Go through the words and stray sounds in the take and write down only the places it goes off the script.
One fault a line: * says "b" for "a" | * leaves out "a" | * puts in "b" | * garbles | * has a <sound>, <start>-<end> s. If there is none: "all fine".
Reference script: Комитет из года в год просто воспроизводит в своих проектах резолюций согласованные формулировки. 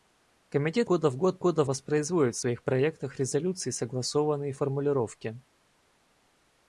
* leaves out "из"
* says "года" for "просто"